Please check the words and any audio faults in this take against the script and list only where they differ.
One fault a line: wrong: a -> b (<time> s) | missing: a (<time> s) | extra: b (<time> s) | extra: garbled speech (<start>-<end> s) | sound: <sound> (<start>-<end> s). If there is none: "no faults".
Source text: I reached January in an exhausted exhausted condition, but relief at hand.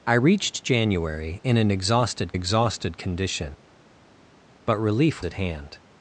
no faults